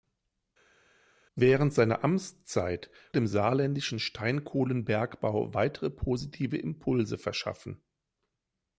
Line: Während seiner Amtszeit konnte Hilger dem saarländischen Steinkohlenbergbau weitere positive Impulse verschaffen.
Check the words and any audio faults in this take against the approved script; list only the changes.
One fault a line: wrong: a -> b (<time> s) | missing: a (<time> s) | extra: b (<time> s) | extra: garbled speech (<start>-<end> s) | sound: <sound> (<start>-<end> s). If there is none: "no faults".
missing: konnte Hilger (2.9 s)